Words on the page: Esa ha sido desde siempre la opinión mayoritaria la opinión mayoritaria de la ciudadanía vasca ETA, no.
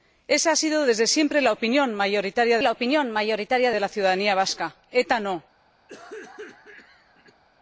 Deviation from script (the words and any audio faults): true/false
true